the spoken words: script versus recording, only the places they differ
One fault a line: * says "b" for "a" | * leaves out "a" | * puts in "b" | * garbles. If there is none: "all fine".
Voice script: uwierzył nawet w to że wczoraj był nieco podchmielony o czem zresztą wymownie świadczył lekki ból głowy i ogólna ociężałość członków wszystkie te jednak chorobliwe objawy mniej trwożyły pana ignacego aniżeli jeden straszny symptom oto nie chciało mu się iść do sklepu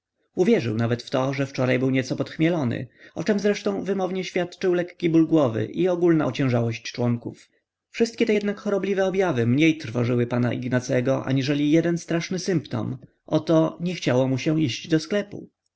all fine